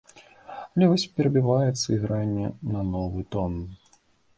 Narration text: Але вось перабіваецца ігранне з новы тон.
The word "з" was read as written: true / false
false